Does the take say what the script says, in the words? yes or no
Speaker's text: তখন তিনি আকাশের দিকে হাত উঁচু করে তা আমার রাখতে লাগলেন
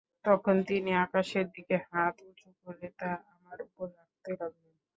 no